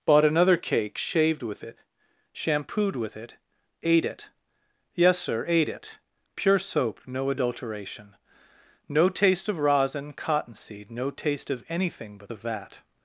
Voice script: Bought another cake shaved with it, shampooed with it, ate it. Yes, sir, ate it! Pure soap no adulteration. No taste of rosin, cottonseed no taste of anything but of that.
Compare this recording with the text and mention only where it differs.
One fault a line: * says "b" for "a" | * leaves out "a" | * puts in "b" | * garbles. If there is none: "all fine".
all fine